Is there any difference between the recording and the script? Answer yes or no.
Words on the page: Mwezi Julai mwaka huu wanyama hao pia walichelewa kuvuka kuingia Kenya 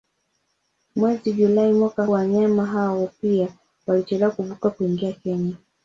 yes